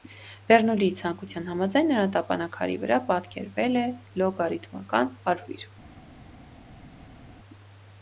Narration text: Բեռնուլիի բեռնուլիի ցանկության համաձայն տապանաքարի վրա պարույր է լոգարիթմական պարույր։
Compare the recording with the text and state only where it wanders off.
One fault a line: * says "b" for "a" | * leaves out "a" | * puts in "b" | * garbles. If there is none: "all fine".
* leaves out "բեռնուլիի"
* puts in "նրա"
* says "պատկերվել" for "պարույր"